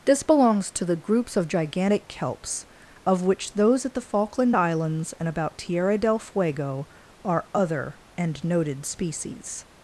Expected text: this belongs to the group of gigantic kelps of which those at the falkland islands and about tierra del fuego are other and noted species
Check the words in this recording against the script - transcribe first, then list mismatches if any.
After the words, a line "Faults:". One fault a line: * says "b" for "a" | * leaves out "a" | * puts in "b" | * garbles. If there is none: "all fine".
this belongs to the groups of gigantic kelps of which those at the falkland islands and about tierra del fuego are other and noted species
Faults:
* says "groups" for "group"